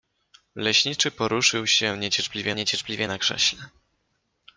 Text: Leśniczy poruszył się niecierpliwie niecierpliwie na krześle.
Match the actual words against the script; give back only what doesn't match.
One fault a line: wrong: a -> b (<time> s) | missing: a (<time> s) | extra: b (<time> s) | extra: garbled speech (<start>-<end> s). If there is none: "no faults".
no faults